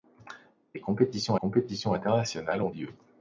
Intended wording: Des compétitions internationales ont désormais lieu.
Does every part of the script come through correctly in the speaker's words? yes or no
no